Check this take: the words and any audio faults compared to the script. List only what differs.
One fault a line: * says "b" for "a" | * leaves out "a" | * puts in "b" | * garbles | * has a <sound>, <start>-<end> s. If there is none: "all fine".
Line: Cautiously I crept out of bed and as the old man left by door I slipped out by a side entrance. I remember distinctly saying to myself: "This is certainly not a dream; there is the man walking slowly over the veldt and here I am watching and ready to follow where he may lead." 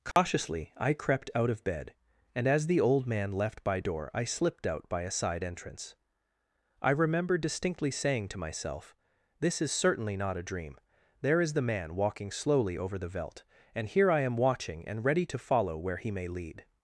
* has a dropout, 0.1-0.2 s